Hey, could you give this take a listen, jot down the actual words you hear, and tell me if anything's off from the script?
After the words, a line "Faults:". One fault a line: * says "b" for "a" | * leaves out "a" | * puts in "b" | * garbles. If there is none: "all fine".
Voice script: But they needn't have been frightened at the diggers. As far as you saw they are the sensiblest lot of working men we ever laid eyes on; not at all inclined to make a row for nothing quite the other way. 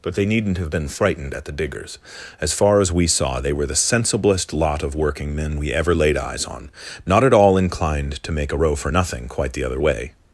But they needn't have been frightened at the diggers. As far as we saw they were the sensiblest lot of working men we ever laid eyes on; not at all inclined to make a row for nothing quite the other way.
Faults:
* says "we" for "you"
* says "were" for "are"